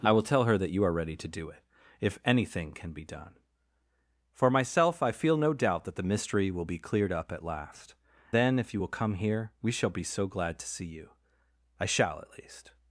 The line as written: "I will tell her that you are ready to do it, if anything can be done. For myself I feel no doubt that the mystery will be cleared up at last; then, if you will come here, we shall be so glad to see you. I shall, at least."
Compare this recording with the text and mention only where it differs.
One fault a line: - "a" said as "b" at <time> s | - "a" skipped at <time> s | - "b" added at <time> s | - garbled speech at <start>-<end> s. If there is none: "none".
none